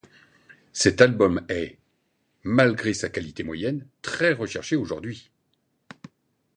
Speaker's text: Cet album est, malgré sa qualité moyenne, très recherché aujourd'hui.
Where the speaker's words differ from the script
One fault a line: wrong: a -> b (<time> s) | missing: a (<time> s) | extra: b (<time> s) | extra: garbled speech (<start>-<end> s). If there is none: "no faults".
no faults